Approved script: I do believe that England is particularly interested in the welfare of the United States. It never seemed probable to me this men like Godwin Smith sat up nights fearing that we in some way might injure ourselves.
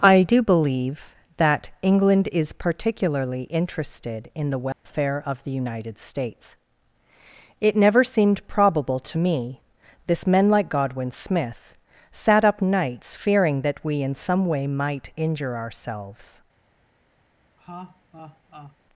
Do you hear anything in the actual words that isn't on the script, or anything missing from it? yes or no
no